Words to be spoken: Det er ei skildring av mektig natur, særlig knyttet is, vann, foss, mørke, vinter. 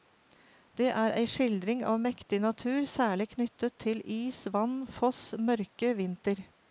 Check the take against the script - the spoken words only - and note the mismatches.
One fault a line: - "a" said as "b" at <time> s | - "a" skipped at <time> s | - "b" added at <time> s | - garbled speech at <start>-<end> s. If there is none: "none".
- "til" added at 3.9 s